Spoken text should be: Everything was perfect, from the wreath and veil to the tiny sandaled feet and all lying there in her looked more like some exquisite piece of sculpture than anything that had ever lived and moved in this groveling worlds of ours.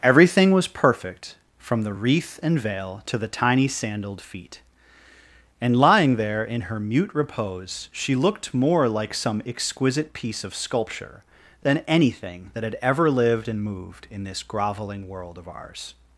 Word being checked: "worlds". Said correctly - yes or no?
no